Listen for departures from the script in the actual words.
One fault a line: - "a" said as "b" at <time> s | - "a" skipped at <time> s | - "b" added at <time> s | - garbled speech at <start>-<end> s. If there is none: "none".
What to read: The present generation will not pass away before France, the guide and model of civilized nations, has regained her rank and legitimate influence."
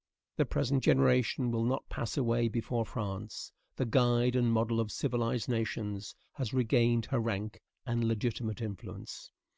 none